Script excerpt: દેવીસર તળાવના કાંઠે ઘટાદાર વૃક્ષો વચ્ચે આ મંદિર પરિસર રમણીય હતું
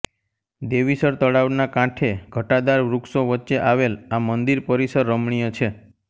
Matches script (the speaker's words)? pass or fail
fail